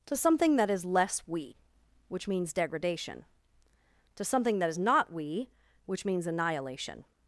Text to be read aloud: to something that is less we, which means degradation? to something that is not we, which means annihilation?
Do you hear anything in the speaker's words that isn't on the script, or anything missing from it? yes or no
no